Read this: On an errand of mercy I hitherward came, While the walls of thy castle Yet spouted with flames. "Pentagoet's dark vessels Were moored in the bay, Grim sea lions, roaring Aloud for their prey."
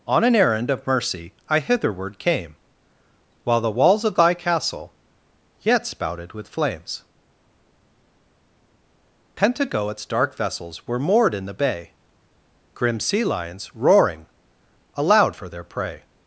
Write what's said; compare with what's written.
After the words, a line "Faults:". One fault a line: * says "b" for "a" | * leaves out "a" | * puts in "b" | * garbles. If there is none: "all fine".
On an errand of mercy I hitherward came, While the walls of thy castle Yet spouted with flames. "Pentagoet's dark vessels Were moored in the bay, Grim sea lions, roaring Aloud for their prey."
Faults:
all fine